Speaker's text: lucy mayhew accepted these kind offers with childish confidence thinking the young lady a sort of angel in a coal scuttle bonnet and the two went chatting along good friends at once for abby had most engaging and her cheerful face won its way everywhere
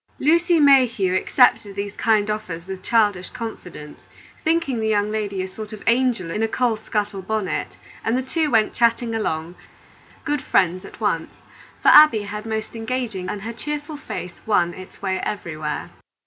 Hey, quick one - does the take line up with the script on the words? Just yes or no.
yes